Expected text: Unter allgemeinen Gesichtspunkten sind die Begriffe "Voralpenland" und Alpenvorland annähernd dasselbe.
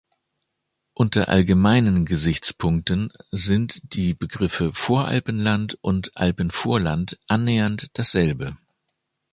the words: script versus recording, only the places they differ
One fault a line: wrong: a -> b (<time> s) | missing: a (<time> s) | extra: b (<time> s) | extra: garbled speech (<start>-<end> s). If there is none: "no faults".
no faults